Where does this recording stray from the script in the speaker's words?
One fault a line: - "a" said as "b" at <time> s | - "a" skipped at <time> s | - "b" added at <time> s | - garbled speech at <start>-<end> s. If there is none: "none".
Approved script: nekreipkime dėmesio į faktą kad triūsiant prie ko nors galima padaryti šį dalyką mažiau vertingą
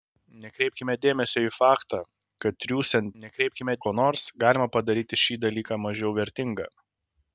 - "prie" said as "nekreipkime" at 3.2 s